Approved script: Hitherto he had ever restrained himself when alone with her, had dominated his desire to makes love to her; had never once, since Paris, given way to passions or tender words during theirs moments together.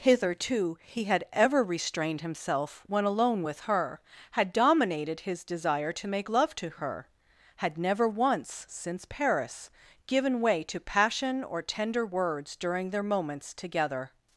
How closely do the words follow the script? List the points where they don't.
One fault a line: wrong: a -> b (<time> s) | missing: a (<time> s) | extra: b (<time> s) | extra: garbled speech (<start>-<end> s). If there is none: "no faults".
wrong: makes -> make (6.1 s)
wrong: passions -> passion (10.8 s)
wrong: theirs -> their (12.9 s)